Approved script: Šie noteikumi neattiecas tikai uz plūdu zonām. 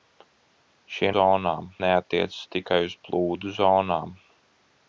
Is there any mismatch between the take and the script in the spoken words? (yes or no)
yes